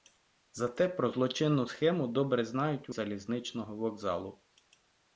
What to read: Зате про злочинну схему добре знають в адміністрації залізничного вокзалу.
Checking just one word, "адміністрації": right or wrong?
wrong